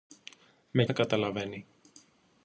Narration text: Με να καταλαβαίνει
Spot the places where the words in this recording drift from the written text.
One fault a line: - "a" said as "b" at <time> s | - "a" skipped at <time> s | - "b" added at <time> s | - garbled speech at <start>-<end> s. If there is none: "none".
none